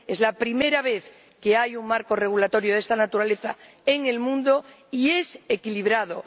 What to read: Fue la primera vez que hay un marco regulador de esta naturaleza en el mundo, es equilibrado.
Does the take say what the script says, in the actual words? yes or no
no